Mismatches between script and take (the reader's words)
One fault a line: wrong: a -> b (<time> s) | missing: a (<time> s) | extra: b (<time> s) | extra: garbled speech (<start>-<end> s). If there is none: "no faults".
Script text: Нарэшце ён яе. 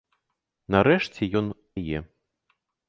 no faults